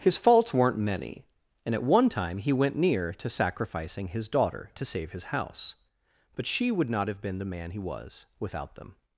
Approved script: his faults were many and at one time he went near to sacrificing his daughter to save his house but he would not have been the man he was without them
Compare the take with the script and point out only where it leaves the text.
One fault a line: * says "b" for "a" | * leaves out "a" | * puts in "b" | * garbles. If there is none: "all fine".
* says "weren't" for "were"
* says "she" for "he"